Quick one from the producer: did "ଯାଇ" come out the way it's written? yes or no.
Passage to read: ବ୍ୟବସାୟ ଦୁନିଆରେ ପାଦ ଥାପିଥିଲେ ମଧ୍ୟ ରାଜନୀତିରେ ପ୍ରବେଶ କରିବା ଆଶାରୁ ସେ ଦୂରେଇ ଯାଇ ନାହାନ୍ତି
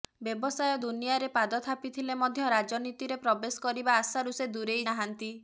no